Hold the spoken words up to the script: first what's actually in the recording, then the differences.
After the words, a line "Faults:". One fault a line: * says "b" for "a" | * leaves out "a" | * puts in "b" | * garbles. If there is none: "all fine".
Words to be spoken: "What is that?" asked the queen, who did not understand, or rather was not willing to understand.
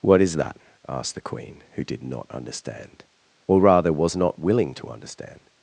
"What is that?" asked the queen, who did not understand, or rather was not willing to understand.
Faults:
all fine